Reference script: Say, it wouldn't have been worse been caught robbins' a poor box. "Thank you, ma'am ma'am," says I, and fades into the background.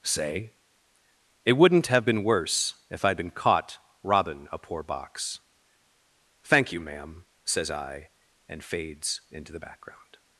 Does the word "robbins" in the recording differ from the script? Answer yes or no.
yes